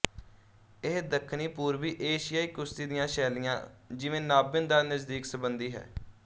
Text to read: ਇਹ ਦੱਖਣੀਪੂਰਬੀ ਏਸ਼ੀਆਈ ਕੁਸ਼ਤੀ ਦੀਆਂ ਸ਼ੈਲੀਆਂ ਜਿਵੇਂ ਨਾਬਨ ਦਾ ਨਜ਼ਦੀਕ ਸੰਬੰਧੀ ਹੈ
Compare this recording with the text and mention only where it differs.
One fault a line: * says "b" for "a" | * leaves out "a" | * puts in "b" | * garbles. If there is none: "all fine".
all fine